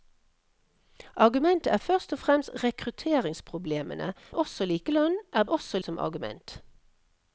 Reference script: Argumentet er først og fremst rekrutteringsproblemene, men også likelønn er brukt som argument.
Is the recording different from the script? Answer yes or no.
yes